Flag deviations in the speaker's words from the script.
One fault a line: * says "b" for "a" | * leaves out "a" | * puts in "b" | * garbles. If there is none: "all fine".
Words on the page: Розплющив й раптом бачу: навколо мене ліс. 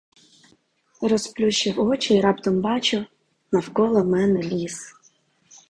* puts in "очі"